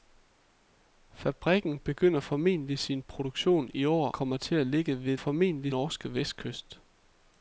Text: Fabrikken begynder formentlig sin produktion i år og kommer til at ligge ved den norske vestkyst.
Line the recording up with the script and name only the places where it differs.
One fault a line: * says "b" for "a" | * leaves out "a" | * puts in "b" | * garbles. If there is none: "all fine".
* leaves out "og"
* says "formentlig" for "den"